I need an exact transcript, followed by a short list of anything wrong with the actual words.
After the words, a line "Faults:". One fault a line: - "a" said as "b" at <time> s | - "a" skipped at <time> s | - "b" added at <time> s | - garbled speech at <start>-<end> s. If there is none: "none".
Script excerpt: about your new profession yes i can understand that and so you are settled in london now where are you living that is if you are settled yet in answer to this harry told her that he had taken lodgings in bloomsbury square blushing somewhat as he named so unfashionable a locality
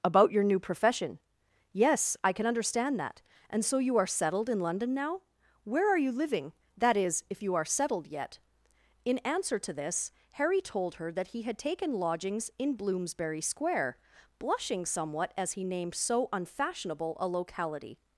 about your new profession yes i can understand that and so you are settled in london now where are you living that is if you are settled yet in answer to this harry told her that he had taken lodgings in bloomsbury square blushing somewhat as he named so unfashionable a locality
Faults:
none